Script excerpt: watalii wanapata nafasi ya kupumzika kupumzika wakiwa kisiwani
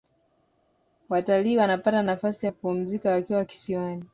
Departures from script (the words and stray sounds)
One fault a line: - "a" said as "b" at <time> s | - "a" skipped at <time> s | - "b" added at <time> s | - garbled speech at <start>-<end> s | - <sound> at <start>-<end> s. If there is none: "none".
- "kupumzika" skipped at 3.1 s